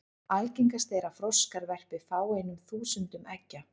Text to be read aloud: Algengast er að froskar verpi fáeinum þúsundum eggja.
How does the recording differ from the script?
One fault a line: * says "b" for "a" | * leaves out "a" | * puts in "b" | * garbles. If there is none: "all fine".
all fine